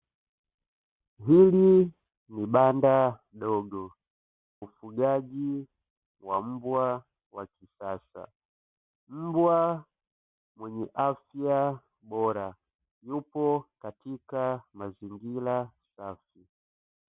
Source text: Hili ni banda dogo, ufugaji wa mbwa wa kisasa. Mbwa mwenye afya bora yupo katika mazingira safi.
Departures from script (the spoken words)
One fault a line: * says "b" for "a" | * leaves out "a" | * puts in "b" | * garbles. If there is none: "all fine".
all fine